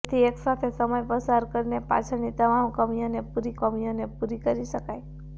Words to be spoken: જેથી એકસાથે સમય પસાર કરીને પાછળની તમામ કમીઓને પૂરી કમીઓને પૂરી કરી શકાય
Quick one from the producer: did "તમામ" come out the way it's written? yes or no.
yes